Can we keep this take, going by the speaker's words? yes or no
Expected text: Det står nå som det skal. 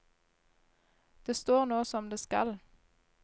yes